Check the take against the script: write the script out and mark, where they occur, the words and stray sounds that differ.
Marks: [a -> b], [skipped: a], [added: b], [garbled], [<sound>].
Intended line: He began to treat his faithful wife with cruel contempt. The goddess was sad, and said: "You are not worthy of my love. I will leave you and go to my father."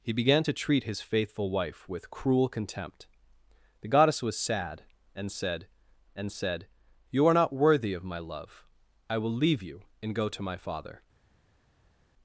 He began to treat his faithful wife with cruel contempt. The goddess was sad, and said: [added: and said] "You are not worthy of my love. I will leave you and go to my father."